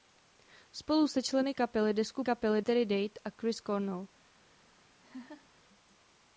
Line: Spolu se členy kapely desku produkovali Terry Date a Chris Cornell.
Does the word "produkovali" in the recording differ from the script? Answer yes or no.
yes